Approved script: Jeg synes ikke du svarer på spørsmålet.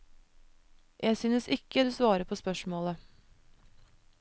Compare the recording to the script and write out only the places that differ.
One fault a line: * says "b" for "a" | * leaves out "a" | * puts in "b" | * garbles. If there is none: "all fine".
all fine